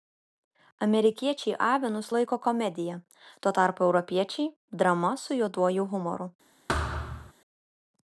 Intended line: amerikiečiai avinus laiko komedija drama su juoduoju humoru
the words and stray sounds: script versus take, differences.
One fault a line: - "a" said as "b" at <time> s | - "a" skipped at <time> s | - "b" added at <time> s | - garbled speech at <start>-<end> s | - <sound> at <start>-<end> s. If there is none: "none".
- "tuo tarpu europiečiai" added at 3.4 s
- thud at 6.7-7.3 s